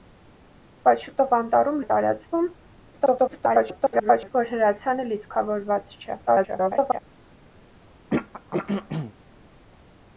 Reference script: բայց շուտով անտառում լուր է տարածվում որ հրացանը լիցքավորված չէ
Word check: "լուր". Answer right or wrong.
wrong